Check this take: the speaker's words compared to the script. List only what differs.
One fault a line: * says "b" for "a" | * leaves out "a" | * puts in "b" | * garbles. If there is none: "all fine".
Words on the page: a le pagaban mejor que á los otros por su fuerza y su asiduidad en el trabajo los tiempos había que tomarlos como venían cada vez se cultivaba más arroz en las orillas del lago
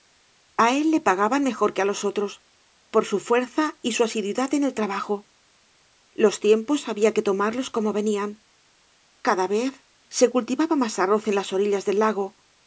* puts in "él"